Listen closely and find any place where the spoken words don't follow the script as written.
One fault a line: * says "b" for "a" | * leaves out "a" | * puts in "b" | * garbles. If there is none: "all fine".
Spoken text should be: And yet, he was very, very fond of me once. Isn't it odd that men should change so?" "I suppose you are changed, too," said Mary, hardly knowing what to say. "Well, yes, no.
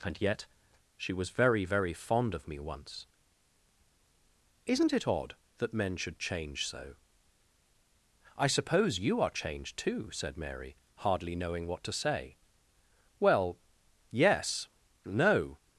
* says "she" for "he"